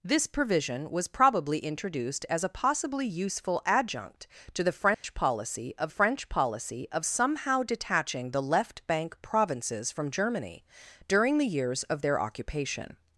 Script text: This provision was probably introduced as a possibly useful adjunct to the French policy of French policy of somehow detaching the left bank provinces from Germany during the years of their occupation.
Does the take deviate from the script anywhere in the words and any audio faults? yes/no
yes